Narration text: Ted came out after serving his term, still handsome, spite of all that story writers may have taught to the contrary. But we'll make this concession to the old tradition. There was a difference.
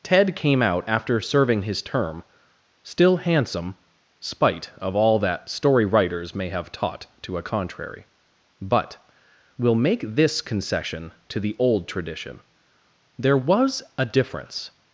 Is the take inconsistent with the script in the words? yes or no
yes